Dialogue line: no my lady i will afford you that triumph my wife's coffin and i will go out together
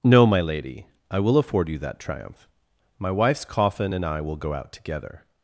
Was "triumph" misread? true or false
false